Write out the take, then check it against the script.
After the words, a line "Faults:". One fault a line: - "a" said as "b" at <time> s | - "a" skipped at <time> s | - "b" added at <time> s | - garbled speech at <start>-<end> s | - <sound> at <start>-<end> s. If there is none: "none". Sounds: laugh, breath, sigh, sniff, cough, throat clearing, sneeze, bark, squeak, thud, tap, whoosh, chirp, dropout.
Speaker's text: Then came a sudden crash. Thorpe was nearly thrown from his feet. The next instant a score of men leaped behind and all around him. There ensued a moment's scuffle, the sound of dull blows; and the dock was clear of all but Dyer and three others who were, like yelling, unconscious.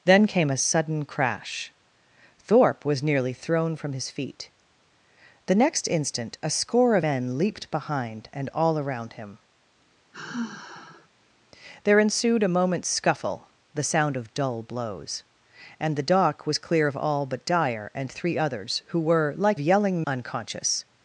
Then came a sudden crash. Thorpe was nearly thrown from his feet. The next instant a score of men leaped behind and all around him. There ensued a moment's scuffle, the sound of dull blows; and the dock was clear of all but Dyer and three others who were, like yelling, unconscious.
Faults:
- sigh at 10.1-11.1 s